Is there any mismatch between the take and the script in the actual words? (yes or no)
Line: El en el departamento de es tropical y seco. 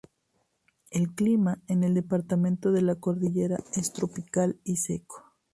yes